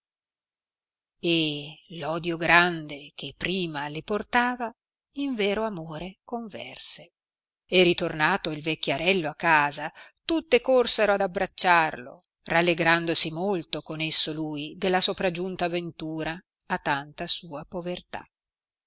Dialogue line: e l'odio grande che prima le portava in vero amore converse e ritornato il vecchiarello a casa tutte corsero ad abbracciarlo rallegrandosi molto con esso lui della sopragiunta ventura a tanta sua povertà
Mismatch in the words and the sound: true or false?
false